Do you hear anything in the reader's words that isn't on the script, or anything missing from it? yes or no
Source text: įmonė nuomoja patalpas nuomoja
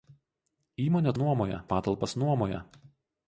no